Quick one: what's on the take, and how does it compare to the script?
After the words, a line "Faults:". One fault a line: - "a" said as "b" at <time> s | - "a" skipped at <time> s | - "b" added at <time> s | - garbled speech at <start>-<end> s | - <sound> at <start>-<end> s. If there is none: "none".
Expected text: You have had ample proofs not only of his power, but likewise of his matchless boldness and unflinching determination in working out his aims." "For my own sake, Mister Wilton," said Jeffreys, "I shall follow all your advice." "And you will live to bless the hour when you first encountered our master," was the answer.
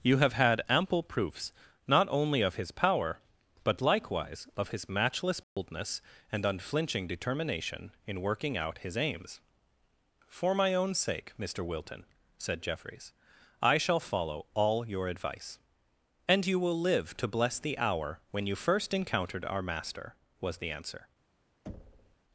You have had ample proofs not only of his power, but likewise of his matchless boldness and unflinching determination in working out his aims." "For my own sake, Mister Wilton," said Jeffreys, "I shall follow all your advice." "And you will live to bless the hour when you first encountered our master," was the answer.
Faults:
- dropout at 5.4-5.6 s
- thud at 21.7-22.2 s